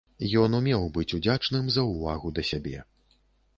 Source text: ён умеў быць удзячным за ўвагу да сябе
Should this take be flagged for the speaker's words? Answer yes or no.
no